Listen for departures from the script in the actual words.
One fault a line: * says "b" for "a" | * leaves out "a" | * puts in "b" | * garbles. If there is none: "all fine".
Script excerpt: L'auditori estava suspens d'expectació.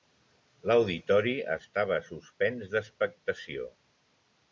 all fine